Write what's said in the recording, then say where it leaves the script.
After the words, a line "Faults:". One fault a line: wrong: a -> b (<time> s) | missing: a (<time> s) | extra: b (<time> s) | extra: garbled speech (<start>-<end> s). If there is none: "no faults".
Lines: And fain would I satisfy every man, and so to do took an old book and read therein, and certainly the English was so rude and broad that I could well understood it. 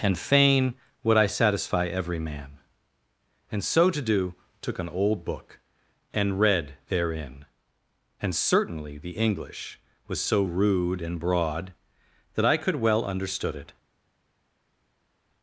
And fain would I satisfy every man, and so to do took an old book and read therein, and certainly the English was so rude and broad that I could well understood it.
Faults:
no faults